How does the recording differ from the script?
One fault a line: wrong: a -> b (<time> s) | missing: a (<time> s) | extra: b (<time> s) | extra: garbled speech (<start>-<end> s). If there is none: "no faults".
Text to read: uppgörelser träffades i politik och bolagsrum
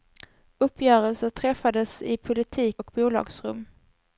no faults